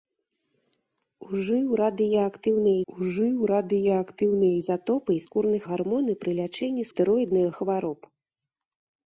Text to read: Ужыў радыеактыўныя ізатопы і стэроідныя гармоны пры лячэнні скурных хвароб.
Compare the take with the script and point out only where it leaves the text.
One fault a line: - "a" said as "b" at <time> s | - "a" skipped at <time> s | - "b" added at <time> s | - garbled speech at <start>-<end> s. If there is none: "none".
- "ужыў радыеактыўныя" added at 2.9 s
- "стэроідныя" said as "скурных" at 5.3 s
- "скурных" said as "стэроідныя" at 6.9 s